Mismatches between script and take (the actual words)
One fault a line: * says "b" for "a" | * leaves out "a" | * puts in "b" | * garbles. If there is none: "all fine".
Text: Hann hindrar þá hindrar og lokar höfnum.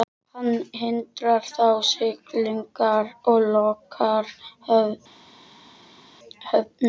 * says "siglingar" for "hindrar"